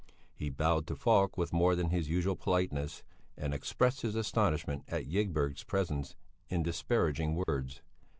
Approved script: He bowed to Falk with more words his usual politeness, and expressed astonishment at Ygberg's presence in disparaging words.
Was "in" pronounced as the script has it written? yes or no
yes